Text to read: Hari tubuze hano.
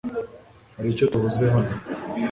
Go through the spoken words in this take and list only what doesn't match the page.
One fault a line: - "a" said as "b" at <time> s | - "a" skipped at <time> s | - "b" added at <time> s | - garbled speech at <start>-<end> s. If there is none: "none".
- "icyo" added at 0.9 s